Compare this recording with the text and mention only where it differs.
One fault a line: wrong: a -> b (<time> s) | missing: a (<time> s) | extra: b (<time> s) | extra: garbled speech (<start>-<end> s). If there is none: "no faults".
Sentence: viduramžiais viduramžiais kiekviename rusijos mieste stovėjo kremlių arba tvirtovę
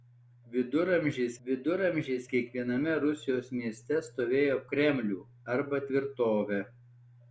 no faults